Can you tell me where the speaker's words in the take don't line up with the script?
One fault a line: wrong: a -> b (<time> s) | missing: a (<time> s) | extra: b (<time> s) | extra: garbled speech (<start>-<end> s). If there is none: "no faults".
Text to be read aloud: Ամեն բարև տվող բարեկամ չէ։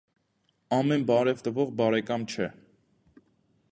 no faults